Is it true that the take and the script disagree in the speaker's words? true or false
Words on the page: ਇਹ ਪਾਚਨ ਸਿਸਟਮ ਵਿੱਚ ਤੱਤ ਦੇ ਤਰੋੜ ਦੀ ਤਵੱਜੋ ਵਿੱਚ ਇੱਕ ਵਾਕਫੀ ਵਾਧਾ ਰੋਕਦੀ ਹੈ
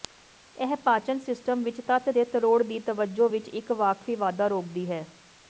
false